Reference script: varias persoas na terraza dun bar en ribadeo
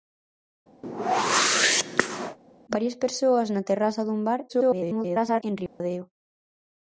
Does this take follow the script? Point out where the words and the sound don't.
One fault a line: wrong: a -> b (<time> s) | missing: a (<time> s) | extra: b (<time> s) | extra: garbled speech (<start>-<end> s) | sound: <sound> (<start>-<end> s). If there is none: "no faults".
sound: whoosh (0.8-2.4 s)
extra: garbled speech (4.5-5.4 s)
sound: dropout (5.7-5.8 s)